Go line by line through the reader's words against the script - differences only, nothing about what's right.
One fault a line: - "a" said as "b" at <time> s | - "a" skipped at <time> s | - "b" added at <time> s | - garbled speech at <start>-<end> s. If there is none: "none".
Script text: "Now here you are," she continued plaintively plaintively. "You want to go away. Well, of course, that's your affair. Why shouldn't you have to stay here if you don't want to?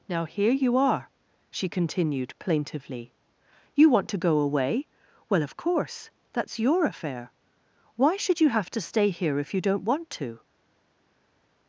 - "plaintively" skipped at 3.1 s
- "shouldn't" said as "should" at 8.2 s